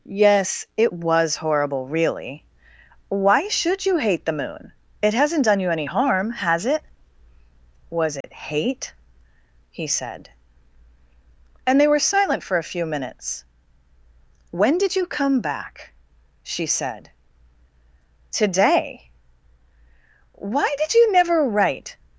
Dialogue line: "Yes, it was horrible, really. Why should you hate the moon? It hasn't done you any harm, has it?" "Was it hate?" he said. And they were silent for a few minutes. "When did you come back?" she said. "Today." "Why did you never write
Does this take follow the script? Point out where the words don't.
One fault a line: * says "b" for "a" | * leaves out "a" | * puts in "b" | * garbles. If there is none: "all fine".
all fine